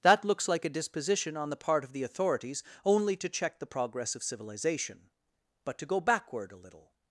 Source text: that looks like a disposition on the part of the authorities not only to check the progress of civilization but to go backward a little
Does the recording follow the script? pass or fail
fail